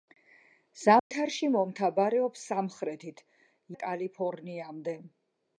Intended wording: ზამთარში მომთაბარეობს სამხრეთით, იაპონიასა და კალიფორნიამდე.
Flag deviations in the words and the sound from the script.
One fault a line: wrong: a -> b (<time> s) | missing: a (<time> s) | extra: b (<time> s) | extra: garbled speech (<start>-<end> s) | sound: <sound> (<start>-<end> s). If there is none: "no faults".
sound: dropout (1.0-1.1 s)
missing: იაპონიასა (3.2 s)